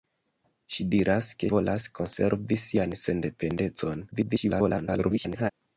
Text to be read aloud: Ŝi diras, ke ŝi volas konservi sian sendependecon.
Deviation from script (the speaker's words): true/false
true